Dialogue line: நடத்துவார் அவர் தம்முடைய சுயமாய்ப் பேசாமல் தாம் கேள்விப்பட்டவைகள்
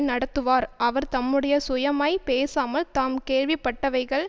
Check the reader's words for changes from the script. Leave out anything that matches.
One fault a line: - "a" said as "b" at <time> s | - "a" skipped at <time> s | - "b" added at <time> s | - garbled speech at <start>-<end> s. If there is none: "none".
none